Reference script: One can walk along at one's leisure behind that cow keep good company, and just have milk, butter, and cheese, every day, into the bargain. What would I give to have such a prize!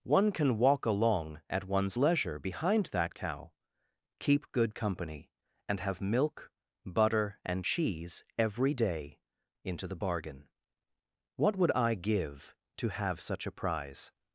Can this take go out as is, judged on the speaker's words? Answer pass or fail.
fail